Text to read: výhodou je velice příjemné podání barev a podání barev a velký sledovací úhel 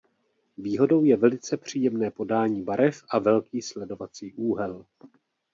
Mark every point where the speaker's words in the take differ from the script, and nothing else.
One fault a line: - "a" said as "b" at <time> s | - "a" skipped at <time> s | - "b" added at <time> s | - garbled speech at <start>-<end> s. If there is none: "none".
- "podání barev a" skipped at 3.2 s